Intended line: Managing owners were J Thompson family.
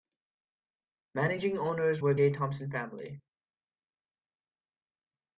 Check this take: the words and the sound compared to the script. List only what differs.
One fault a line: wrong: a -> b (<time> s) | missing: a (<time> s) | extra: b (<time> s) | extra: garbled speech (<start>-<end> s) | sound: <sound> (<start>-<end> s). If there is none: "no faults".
no faults